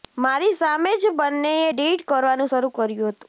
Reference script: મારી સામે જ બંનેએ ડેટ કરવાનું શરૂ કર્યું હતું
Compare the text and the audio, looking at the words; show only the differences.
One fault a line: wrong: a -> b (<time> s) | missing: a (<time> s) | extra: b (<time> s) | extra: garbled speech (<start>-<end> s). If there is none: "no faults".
no faults